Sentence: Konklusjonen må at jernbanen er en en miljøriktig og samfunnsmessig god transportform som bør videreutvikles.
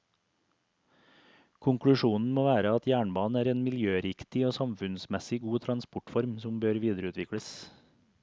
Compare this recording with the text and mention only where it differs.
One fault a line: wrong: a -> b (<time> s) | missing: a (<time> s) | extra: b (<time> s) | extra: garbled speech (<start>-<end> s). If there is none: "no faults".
extra: være (2.5 s)
missing: en (3.6 s)